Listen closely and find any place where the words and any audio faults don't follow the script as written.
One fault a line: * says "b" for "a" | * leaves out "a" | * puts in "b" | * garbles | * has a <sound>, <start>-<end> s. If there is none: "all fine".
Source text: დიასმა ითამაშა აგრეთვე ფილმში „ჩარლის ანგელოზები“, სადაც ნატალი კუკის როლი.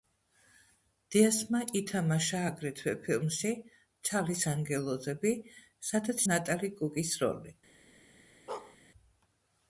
* has a bark, 8.5-8.8 s